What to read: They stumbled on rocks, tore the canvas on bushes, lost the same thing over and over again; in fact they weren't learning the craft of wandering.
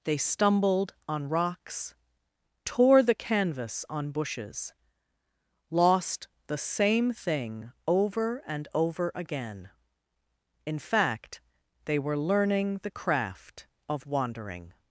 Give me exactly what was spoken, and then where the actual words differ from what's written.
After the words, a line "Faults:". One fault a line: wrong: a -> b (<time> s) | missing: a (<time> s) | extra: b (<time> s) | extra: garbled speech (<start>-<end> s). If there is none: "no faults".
They stumbled on rocks, tore the canvas on bushes, lost the same thing over and over again; in fact they were learning the craft of wandering.
Faults:
wrong: weren't -> were (12.0 s)